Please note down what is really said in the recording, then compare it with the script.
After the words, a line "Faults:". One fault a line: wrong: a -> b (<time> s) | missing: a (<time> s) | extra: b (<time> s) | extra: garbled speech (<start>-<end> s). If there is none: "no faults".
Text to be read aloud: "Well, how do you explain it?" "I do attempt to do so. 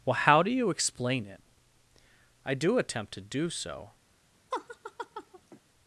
"Well, how do you explain it?" "I do attempt to do so.
Faults:
no faults